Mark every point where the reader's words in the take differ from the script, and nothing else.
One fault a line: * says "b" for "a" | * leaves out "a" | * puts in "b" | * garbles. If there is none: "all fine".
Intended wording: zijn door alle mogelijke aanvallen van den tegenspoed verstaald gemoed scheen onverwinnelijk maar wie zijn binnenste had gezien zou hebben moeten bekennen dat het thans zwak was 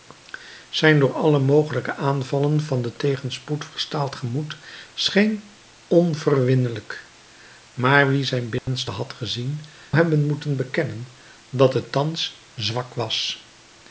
* leaves out "zou"